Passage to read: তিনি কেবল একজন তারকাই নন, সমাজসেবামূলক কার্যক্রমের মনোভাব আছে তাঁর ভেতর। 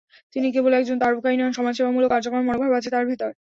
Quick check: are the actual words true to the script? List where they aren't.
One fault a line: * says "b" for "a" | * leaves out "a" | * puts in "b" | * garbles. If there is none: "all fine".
all fine